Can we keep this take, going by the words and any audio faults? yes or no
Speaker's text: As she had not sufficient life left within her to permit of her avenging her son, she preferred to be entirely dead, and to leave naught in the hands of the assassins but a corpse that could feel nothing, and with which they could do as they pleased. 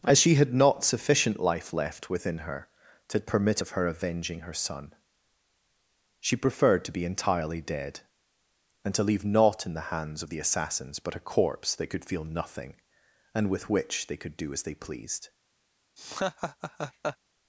no